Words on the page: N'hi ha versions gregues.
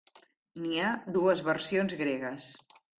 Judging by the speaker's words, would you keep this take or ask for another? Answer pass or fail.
fail